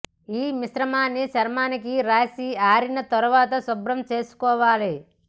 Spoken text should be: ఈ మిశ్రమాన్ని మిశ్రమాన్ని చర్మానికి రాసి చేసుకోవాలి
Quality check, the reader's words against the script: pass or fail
fail